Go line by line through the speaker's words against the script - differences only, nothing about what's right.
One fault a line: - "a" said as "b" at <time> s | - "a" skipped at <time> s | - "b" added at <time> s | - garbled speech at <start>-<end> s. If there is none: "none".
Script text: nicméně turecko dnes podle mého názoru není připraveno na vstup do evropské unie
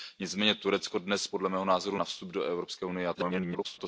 - "není připraveno" skipped at 2.0 s
- garbled speech at 3.1-3.8 s